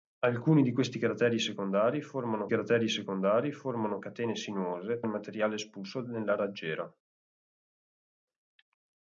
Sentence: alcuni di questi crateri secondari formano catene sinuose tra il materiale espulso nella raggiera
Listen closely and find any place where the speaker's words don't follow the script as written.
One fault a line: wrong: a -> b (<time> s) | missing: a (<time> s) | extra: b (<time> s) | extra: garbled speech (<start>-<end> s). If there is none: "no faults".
extra: crateri secondari formano (2.5 s)
missing: tra (5.0 s)